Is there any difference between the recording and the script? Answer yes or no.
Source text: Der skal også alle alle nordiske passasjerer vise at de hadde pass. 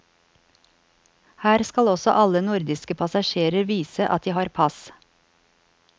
yes